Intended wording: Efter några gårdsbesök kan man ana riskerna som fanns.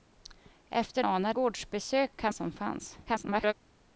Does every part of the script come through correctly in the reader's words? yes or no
no